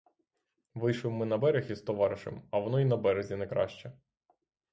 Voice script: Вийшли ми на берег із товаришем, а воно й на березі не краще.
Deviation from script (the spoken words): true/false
false